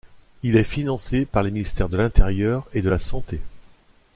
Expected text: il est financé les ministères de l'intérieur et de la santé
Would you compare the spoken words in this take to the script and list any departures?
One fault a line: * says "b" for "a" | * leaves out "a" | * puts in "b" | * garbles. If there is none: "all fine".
* puts in "par"